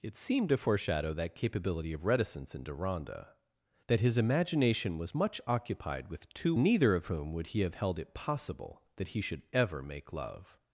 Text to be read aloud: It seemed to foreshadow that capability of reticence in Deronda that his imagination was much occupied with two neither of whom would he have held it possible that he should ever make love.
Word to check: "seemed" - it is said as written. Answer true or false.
true